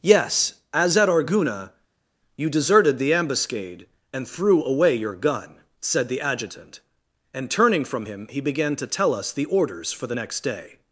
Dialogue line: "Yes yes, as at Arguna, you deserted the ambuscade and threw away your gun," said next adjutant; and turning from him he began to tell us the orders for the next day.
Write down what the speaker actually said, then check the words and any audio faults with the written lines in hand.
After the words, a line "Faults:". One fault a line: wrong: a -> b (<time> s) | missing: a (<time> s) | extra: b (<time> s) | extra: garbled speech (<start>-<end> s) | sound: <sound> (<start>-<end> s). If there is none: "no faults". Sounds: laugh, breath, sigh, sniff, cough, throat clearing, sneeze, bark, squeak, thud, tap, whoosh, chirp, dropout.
"Yes, as at Arguna, you deserted the ambuscade and threw away your gun," said the adjutant; and turning from him he began to tell us the orders for the next day.
Faults:
missing: yes (0.6 s)
wrong: next -> the (6.1 s)